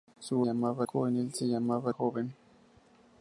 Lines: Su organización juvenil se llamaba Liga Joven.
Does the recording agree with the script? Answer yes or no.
no